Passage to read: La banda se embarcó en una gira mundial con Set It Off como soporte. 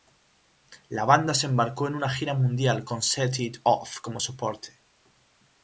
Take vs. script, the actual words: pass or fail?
pass